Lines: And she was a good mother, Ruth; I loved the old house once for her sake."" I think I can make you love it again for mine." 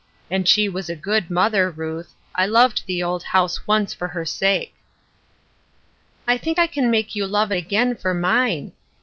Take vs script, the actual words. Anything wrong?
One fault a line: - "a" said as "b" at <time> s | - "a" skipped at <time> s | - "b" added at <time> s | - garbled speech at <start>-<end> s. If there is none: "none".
none